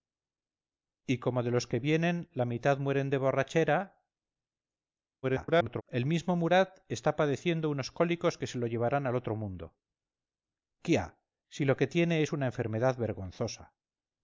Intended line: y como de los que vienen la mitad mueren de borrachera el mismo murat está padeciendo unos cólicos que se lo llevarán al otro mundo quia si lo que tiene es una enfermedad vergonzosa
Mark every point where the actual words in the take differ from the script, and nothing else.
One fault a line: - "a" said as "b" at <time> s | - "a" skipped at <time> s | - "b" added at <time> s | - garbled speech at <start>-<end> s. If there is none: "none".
- garbled speech at 5.2-5.8 s